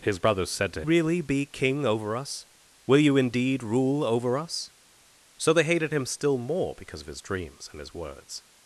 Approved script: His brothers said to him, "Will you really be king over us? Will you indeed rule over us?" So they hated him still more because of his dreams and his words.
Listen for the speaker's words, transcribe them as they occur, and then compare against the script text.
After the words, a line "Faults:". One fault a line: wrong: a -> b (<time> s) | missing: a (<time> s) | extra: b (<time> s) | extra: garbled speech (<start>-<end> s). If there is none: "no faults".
His brothers said to really be king over us? Will you indeed rule over us?" So they hated him still more because of his dreams and his words.
Faults:
missing: him Will you (0.8 s)